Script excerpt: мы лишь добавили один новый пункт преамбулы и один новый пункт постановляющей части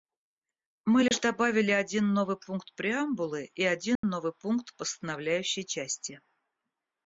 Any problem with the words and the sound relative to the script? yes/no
yes